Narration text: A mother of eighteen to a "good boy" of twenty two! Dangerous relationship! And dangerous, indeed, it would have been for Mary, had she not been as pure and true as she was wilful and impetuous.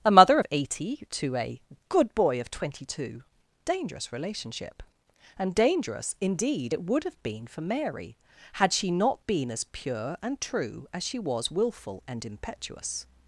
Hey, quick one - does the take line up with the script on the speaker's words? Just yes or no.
no